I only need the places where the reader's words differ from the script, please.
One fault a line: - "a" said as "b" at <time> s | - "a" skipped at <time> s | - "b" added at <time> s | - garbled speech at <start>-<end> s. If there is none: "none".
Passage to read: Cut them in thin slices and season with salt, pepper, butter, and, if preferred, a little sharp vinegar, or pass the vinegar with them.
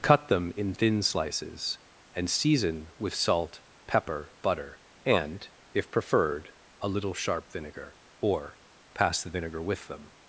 none